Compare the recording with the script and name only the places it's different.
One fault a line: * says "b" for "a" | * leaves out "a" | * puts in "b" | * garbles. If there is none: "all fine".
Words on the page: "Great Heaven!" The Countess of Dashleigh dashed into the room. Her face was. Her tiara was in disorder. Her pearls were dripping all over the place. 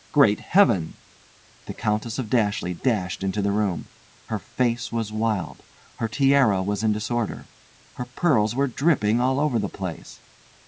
* puts in "wild"